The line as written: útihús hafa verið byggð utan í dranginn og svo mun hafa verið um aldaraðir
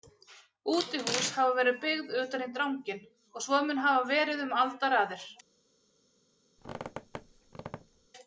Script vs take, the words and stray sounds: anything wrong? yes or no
yes